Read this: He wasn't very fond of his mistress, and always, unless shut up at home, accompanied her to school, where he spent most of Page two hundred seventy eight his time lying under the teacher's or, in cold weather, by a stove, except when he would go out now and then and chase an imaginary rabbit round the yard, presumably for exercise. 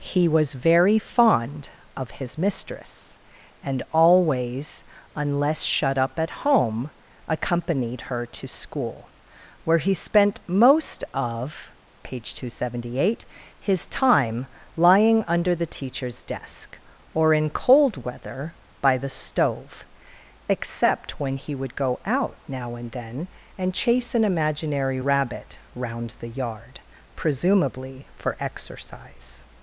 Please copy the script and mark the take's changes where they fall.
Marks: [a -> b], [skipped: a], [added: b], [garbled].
He [wasn't -> was] very fond of his mistress, and always, unless shut up at home, accompanied her to school, where he spent most of Page two hundred seventy eight his time lying under the teacher's [added: desk] or, in cold weather, by [a -> the] stove, except when he would go out now and then and chase an imaginary rabbit round the yard, presumably for exercise.